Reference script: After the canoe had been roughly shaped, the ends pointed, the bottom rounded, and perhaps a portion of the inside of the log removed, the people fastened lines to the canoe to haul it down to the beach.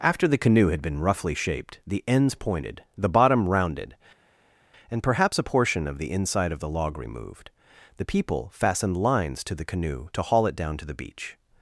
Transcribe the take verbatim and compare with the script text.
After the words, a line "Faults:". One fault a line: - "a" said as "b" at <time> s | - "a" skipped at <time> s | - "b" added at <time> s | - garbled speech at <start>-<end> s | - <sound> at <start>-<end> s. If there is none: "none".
After the canoe had been roughly shaped, the ends pointed, the bottom rounded, and perhaps a portion of the inside of the log removed, the people fastened lines to the canoe to haul it down to the beach.
Faults:
none